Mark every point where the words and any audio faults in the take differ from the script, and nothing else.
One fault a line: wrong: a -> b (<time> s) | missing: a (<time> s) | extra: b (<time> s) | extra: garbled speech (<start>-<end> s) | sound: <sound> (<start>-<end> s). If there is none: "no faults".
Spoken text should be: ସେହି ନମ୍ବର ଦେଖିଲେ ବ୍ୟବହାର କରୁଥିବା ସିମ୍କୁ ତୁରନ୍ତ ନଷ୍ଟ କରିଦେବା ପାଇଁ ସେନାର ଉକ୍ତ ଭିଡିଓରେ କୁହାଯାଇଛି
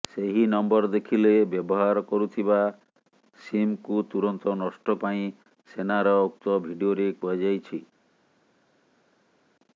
missing: କରିଦେବା (5.0 s)